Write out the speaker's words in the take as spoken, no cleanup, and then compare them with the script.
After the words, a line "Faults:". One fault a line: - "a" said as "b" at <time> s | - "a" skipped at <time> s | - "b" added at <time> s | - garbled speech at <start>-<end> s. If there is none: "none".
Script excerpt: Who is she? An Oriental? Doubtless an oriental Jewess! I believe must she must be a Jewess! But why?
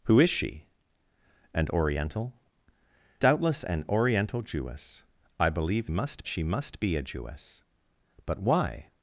Who is she? An Oriental? Doubtless an oriental Jewess! I believe must she must be a Jewess! But why?
Faults:
none